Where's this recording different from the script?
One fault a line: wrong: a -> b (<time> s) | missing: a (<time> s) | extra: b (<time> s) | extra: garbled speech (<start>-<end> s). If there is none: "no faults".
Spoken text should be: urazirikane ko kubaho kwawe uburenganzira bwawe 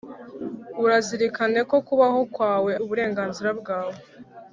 no faults